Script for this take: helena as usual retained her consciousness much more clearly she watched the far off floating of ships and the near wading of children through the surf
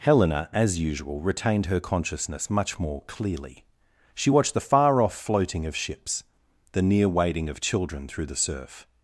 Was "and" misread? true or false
true